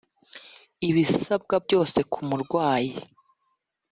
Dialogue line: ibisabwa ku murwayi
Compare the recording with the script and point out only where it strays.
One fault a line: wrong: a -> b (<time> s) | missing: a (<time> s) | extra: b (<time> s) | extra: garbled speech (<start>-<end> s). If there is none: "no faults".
extra: byose (1.6 s)